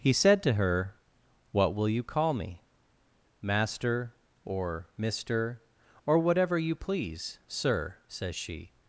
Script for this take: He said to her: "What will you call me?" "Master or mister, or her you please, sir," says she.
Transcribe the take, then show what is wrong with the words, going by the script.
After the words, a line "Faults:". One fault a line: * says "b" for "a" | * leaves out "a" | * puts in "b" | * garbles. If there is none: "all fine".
He said to her: "What will you call me?" "Master or mister, or whatever you please, sir," says she.
Faults:
* says "whatever" for "her"